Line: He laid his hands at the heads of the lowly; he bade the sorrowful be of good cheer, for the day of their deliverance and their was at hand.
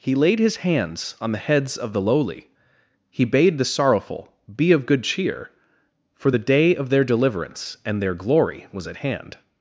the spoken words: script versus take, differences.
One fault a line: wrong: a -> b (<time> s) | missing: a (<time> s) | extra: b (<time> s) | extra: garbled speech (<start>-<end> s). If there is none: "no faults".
wrong: at -> on (1.2 s)
extra: glory (8.1 s)